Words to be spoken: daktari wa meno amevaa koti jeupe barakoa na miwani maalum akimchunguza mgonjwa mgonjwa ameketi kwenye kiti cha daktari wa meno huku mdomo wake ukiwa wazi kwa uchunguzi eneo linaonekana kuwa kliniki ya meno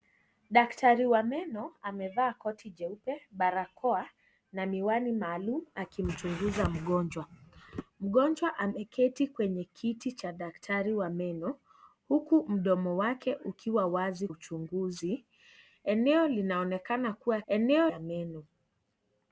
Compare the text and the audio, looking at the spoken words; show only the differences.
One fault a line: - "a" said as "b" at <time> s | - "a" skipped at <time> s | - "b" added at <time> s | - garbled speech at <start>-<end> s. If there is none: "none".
- "kwa" skipped at 14.3 s
- "kliniki" said as "eneo" at 17.5 s